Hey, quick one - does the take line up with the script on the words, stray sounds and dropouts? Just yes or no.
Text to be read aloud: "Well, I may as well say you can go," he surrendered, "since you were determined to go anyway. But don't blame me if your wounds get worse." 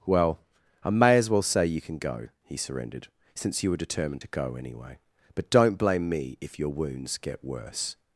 yes